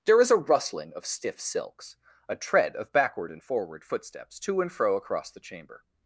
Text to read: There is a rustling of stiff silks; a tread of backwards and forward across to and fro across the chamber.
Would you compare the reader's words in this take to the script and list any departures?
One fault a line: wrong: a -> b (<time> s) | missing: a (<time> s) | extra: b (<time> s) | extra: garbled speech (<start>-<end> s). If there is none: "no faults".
wrong: backwards -> backward (2.9 s)
wrong: across -> footsteps (3.8 s)